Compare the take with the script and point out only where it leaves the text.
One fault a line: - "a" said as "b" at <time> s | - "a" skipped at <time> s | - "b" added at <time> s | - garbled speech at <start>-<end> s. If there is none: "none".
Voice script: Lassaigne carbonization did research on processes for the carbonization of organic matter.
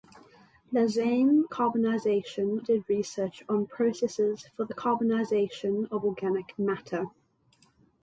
none